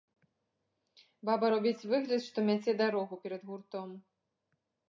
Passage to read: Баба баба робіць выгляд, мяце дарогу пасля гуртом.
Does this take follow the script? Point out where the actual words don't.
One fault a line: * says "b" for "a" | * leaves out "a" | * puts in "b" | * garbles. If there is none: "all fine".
* leaves out "баба"
* puts in "што"
* says "перад" for "пасля"